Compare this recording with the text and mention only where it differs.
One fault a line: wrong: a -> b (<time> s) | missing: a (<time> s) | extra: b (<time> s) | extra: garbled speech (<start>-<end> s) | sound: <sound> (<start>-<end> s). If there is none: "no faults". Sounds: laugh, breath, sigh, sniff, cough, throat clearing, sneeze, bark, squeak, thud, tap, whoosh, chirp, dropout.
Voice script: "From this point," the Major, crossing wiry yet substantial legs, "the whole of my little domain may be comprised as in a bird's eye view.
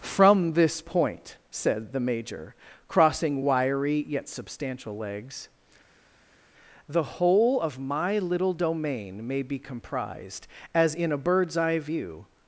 extra: said (1.5 s)